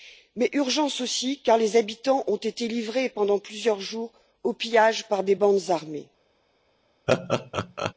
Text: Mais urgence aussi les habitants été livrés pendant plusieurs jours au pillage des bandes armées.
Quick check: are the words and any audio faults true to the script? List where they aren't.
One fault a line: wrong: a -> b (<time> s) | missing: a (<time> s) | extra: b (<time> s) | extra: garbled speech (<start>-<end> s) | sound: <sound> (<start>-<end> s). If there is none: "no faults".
extra: car (1.4 s)
extra: ont (2.3 s)
extra: par (5.1 s)
sound: laugh (7.1-7.9 s)